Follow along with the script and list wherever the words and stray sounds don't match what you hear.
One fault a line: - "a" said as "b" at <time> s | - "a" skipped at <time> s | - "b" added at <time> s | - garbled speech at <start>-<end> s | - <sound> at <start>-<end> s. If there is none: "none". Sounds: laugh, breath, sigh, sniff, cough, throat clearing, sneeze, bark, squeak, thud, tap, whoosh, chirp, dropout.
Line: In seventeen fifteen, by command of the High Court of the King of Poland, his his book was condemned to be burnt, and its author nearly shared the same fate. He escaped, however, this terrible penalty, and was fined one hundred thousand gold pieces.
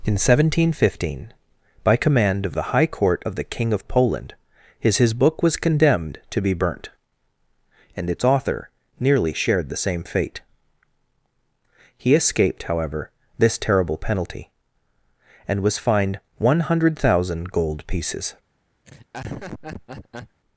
- laugh at 18.8-20.4 s